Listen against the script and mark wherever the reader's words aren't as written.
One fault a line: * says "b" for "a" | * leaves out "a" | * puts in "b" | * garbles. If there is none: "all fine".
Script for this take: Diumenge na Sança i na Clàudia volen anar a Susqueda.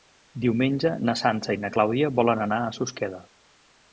all fine